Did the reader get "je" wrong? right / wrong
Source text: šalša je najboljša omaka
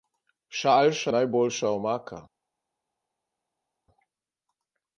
wrong